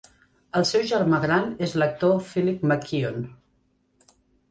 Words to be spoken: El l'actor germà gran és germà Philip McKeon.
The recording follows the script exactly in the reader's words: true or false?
false